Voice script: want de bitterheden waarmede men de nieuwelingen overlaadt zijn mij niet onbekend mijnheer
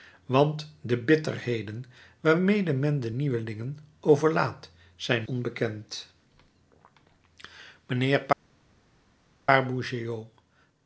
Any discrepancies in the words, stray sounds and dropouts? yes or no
yes